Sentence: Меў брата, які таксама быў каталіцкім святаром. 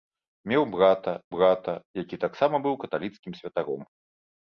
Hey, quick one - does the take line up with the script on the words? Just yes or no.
no